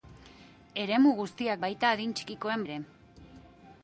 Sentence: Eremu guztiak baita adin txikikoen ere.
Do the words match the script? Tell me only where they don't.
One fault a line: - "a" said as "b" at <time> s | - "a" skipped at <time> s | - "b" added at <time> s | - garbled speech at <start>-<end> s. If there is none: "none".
none